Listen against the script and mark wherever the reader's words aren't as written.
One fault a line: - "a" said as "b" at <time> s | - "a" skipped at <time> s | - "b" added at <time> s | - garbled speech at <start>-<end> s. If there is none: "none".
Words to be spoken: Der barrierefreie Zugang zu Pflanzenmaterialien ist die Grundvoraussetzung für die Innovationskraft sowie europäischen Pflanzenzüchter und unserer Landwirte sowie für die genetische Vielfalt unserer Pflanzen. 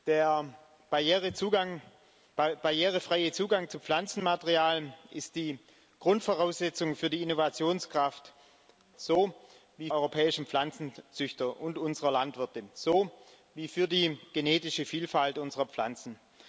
none